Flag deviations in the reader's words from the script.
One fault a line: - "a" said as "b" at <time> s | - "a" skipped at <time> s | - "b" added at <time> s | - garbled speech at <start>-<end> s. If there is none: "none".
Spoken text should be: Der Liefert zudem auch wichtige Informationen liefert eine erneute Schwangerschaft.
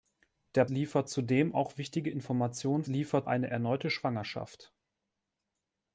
none